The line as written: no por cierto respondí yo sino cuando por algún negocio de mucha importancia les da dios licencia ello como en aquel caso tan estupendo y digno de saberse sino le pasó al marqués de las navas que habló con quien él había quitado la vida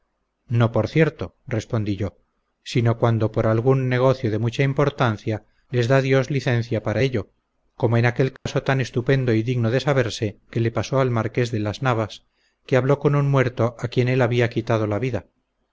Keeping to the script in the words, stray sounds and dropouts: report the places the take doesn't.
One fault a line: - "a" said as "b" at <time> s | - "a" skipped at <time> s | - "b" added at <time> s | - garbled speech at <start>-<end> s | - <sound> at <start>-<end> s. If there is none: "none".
- "para" added at 6.8 s
- dropout at 8.4-8.5 s
- "sino" said as "que" at 10.5 s
- "un muerto a" added at 13.2 s